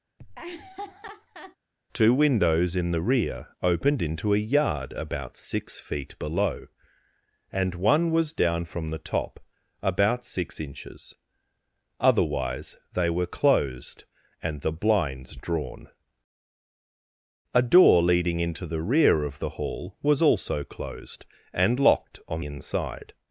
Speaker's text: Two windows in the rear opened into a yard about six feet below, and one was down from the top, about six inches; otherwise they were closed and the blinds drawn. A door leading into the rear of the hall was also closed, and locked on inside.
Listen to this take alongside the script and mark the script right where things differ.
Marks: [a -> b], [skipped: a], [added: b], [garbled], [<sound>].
[laugh] Two windows in the rear opened into a yard about six feet below, and one was down from the top, about six inches; otherwise they were closed and the blinds drawn. A door leading into the rear of the hall was also closed, and locked on inside.